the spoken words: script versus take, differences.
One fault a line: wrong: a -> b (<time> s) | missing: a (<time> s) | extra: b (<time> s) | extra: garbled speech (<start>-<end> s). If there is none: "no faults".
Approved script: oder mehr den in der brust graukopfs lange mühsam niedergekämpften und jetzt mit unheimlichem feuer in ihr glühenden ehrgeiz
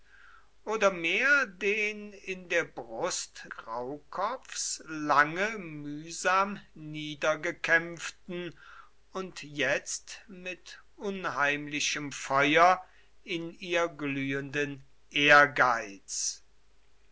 no faults